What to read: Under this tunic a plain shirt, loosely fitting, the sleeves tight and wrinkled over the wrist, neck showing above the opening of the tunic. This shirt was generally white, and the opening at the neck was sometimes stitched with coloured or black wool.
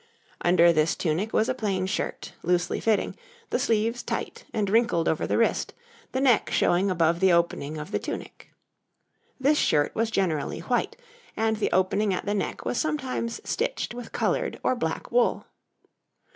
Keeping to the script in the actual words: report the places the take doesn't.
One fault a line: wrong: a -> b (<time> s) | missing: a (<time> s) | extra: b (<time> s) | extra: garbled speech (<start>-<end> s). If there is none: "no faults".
extra: was (1.3 s)
extra: the (6.1 s)